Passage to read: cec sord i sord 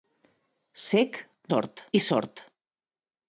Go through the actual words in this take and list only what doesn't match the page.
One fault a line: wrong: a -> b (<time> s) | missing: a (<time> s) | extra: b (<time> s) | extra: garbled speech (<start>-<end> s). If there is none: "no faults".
no faults